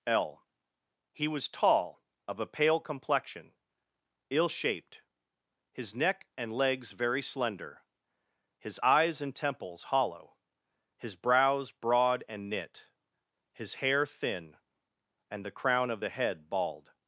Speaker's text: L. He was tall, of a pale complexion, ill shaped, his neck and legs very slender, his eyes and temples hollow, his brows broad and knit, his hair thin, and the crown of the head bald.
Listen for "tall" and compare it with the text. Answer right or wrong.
right